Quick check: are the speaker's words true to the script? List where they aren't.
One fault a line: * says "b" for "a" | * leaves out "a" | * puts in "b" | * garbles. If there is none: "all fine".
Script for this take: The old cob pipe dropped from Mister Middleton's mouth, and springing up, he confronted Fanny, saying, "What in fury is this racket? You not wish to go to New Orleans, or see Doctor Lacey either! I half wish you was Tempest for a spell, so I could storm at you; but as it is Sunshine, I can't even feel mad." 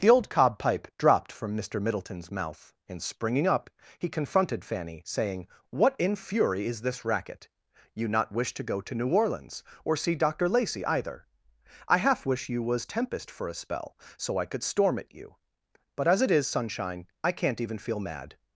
all fine